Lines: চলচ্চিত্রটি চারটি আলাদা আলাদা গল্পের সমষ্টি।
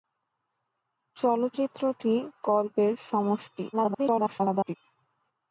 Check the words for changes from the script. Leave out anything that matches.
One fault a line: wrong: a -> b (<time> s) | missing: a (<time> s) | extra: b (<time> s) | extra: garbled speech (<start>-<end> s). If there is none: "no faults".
missing: চারটি আলাদা আলাদা (2.1 s)
extra: garbled speech (3.7-4.8 s)